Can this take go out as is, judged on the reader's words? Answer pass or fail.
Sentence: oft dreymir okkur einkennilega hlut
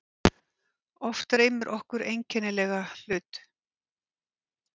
pass